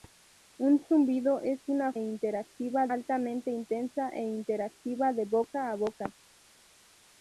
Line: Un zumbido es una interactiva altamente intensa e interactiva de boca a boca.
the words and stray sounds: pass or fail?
pass